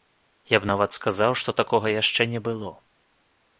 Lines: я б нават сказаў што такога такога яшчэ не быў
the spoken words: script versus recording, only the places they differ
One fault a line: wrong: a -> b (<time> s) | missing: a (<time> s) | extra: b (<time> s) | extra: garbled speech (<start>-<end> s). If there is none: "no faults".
missing: такога (1.9 s)
wrong: быў -> было (2.5 s)